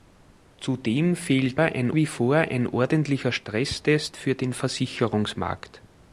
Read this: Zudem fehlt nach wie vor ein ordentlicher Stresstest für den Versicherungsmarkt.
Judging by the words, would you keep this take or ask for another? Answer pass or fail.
fail